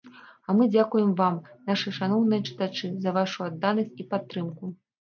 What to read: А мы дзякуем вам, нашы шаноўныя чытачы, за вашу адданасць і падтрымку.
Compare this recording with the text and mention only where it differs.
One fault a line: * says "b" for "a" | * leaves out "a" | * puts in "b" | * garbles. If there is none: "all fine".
all fine